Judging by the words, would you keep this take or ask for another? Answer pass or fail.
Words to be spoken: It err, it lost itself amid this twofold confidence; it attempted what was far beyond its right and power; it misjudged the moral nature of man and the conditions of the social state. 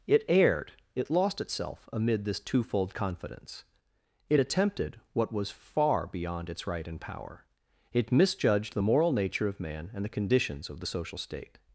fail